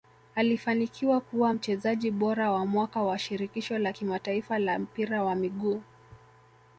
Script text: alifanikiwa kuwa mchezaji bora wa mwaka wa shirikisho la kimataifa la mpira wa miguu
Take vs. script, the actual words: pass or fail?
pass